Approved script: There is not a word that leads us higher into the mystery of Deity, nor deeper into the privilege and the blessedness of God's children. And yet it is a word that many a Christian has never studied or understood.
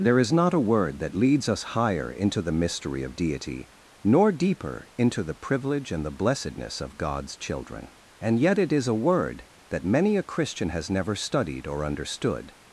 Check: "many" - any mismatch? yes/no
no